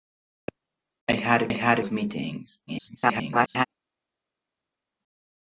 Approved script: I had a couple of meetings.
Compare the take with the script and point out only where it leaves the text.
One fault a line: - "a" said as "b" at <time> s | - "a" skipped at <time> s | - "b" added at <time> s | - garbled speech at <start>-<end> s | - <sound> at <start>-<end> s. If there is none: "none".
- "couple" said as "had" at 1.5 s
- garbled speech at 2.7-3.7 s